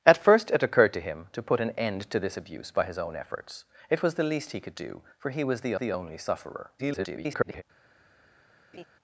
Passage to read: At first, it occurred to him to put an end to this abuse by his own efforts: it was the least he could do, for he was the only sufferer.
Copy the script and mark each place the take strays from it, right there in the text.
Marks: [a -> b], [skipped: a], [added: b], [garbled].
At first, it occurred to him to put an end to this abuse by his own efforts: it was the least he could do, for he was the [added: the] only sufferer. [garbled]